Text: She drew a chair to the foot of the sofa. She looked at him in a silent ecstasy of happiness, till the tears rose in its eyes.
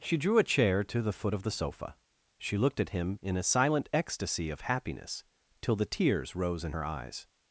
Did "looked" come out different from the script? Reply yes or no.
no